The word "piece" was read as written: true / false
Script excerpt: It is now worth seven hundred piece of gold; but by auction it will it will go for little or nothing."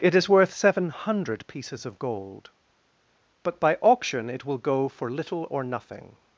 false